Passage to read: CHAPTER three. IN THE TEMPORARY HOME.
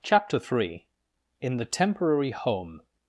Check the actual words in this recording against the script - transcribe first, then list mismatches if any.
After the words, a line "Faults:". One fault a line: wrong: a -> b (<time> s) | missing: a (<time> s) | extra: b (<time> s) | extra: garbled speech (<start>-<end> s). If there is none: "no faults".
CHAPTER three. IN THE TEMPORARY HOME.
Faults:
no faults